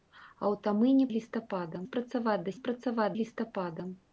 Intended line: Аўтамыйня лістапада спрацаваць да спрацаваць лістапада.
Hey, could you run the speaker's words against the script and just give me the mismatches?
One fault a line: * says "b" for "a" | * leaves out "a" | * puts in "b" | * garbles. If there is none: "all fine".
all fine